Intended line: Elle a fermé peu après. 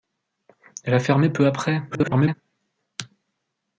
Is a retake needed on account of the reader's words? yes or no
yes